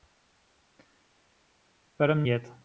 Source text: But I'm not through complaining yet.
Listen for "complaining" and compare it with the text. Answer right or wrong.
wrong